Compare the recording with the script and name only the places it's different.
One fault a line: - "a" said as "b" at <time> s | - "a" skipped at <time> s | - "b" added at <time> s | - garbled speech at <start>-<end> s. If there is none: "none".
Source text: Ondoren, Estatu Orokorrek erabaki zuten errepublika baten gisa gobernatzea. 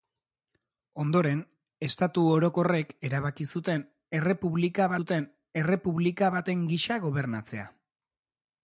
- "zuten errepublika" added at 5.0 s